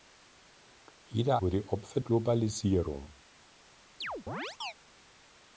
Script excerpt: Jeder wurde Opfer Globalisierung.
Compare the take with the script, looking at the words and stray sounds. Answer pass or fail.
fail